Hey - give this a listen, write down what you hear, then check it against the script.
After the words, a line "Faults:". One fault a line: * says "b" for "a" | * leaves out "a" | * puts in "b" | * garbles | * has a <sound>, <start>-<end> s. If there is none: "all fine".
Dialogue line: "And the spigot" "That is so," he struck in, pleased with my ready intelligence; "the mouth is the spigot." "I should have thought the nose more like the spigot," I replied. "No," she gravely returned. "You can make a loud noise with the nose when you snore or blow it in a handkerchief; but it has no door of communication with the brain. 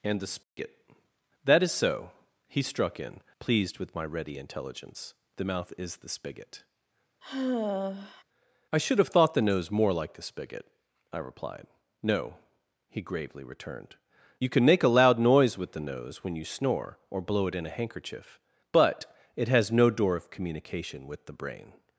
"And the spigot" "That is so," he struck in, pleased with my ready intelligence; "the mouth is the spigot." "I should have thought the nose more like the spigot," I replied. "No," he gravely returned. "You can make a loud noise with the nose when you snore or blow it in a handkerchief; but it has no door of communication with the brain.
Faults:
* has a dropout, 0.4-0.6 s
* has a sigh, 7.2-8.2 s
* says "he" for "she"